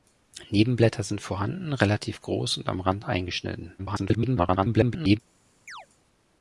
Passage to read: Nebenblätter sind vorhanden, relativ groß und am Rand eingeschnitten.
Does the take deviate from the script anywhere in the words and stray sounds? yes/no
yes